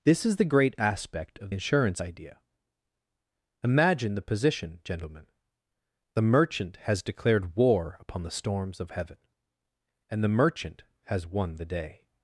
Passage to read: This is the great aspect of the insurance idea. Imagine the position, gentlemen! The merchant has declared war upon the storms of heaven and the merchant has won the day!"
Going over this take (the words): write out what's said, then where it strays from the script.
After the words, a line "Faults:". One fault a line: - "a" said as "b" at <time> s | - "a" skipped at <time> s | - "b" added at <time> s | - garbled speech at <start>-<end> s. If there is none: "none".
This is the great aspect of insurance idea. Imagine the position, gentlemen! The merchant has declared war upon the storms of heaven and the merchant has won the day!"
Faults:
- "the" skipped at 1.5 s